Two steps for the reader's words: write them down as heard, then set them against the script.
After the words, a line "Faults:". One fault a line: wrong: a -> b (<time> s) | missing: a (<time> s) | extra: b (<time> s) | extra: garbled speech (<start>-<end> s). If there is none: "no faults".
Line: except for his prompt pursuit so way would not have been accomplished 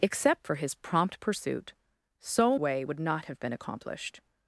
except for his prompt pursuit so way would not have been accomplished
Faults:
no faults